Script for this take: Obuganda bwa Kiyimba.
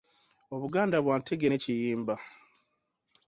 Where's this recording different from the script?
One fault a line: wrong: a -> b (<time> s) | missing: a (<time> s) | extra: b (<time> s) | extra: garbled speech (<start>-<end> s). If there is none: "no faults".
extra: Ntege ne (1.2 s)